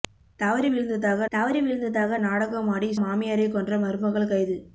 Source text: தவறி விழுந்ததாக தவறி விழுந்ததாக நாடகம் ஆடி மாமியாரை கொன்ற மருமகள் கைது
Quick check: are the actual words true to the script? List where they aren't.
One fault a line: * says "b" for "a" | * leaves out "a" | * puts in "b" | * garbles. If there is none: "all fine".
all fine